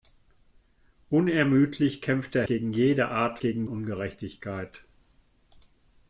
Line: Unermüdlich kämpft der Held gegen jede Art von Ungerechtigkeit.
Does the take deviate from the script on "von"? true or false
true